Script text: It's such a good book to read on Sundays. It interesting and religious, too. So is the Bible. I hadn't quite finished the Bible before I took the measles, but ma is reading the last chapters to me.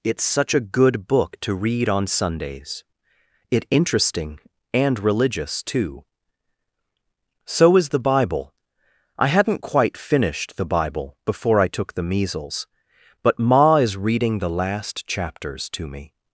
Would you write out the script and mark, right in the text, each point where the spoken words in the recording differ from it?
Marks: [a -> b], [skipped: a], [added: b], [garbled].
It's such a good book to read on Sundays. It interesting and religious, too. So is the Bible. I hadn't quite finished the Bible before I took the measles, but ma is reading the last chapters to me.